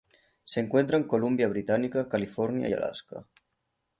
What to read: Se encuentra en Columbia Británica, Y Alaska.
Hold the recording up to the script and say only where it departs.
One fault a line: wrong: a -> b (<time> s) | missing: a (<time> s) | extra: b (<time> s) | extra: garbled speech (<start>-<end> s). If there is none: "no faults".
extra: California (2.1 s)